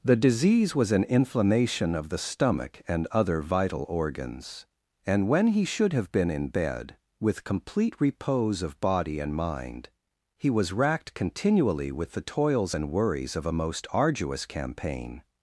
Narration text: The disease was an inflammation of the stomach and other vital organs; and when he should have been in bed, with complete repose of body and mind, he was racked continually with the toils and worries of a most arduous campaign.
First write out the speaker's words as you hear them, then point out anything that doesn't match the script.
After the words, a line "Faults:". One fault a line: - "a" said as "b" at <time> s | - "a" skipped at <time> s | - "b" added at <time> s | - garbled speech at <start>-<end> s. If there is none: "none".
The disease was an inflammation of the stomach and other vital organs; and when he should have been in bed, with complete repose of body and mind, he was racked continually with the toils and worries of a most arduous campaign.
Faults:
none